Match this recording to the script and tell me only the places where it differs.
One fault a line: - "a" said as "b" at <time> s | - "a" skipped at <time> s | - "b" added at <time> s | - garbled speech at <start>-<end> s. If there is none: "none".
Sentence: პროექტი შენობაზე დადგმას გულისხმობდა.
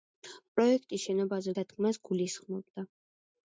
none